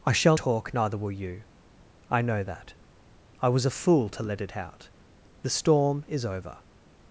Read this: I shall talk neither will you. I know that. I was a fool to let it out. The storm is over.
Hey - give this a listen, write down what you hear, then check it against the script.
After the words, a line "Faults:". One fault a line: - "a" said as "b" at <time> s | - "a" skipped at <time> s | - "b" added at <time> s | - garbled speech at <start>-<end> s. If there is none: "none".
I shall talk neither will you. I know that. I was a fool to let it out. The storm is over.
Faults:
none